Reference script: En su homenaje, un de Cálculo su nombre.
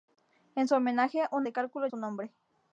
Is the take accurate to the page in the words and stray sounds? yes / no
yes